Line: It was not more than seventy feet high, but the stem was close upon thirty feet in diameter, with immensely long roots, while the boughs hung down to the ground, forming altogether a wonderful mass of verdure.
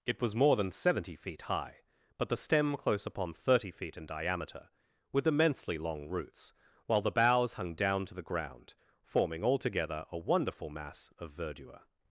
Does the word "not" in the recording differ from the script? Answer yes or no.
yes